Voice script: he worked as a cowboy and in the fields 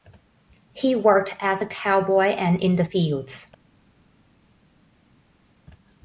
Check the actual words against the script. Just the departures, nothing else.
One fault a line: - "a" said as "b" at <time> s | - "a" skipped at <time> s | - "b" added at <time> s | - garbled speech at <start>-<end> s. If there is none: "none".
none